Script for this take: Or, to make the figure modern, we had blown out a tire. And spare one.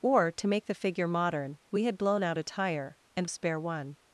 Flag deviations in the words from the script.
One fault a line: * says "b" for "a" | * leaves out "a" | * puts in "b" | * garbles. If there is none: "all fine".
all fine